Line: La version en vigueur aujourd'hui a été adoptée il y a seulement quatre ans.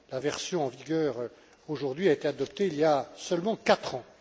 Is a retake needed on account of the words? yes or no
no